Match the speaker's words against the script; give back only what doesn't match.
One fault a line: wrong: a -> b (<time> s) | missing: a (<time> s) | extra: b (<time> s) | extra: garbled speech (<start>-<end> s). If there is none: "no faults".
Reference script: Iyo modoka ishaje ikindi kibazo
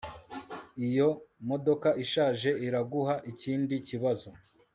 extra: iraguha (2.7 s)